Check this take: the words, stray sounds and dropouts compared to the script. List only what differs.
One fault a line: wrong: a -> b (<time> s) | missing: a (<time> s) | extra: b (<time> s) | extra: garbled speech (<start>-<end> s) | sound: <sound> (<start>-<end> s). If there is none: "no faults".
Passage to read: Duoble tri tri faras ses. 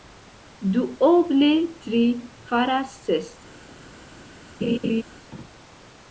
missing: tri (2.0 s)
sound: laugh (4.6-5.0 s)